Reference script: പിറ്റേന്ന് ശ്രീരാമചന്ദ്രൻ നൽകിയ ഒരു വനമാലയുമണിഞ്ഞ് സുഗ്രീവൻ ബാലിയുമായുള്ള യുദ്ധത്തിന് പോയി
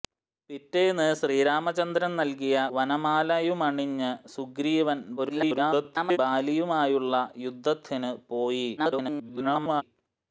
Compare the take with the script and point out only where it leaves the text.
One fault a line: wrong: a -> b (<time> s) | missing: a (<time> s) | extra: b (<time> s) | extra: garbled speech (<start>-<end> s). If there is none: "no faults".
missing: ഒരു (2.5 s)
extra: garbled speech (5.2-6.2 s)
extra: garbled speech (8.8-9.8 s)